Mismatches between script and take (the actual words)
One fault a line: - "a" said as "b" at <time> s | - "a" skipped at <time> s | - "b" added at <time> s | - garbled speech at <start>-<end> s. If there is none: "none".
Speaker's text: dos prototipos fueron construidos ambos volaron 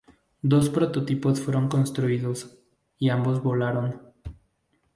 - "y" added at 3.0 s